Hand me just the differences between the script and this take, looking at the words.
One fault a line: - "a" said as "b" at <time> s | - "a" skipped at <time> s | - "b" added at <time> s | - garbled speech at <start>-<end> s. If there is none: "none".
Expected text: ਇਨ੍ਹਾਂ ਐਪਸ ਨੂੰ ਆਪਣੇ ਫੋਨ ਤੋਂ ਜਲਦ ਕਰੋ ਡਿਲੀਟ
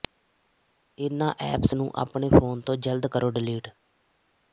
none